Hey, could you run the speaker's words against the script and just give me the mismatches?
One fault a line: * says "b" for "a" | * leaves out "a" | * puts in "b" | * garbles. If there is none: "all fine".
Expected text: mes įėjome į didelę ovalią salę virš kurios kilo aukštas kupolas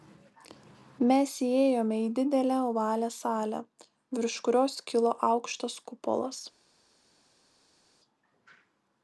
all fine